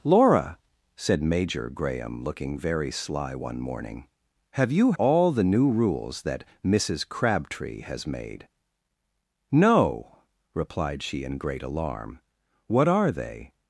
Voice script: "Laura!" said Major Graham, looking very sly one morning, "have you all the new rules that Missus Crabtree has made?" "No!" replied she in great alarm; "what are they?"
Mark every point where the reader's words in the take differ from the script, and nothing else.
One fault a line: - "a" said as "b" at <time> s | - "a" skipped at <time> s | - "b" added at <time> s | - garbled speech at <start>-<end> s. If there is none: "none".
none